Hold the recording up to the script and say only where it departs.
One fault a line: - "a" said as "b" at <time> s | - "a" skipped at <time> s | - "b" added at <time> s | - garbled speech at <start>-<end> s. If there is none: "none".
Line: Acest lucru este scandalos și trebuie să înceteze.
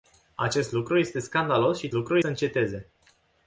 - "trebuie" said as "lucru" at 1.9 s